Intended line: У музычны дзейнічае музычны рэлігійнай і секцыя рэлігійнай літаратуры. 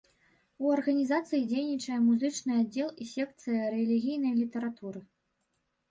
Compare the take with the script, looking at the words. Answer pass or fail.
fail